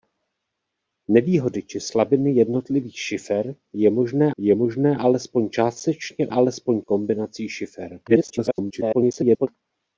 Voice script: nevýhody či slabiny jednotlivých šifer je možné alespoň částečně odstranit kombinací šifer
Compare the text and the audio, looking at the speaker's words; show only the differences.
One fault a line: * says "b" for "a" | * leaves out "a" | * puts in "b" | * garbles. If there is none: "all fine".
* puts in "je možné"
* says "alespoň" for "odstranit"
* garbles